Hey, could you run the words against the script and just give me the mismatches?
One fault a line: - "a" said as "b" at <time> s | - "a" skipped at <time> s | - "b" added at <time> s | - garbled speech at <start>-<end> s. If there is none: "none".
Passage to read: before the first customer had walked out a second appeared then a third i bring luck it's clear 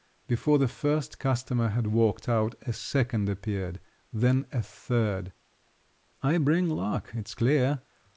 none